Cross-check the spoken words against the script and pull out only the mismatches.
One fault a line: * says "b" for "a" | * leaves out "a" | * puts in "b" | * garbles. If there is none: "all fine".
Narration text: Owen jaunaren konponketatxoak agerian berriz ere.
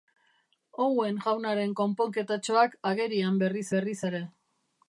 * puts in "berriz"